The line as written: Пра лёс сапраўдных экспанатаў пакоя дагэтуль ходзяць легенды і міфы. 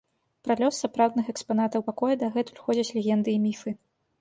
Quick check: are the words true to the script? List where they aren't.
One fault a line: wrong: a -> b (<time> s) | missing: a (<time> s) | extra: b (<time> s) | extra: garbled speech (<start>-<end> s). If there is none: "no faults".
no faults